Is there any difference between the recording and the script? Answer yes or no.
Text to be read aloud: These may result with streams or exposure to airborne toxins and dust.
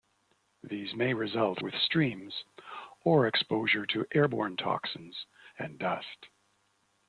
no